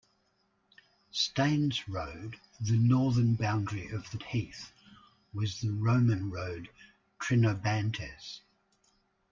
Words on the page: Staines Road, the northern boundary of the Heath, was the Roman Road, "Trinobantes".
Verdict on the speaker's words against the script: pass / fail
pass